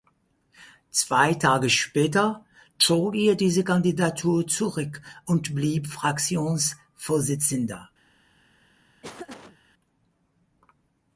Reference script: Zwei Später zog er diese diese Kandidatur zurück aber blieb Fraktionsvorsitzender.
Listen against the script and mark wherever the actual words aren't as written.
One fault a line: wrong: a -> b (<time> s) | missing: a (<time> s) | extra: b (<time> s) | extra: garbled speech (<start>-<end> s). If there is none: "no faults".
extra: Tage (1.4 s)
missing: diese (3.7 s)
wrong: aber -> und (5.2 s)